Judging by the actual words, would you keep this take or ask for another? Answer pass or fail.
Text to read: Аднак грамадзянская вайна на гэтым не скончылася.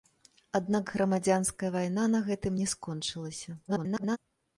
fail